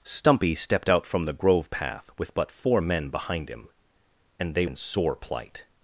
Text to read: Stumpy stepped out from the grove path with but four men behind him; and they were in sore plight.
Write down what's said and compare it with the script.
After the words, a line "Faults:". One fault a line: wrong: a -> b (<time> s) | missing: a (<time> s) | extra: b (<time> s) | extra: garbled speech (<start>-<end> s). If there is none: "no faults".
Stumpy stepped out from the grove path with but four men behind him; and they in sore plight.
Faults:
missing: were (4.7 s)